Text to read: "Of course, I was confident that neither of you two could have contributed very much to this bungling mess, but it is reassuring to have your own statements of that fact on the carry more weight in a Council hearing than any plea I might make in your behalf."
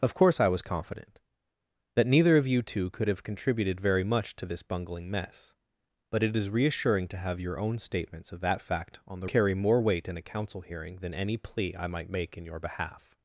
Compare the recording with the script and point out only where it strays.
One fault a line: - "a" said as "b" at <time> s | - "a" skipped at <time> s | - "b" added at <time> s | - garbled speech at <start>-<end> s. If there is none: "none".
none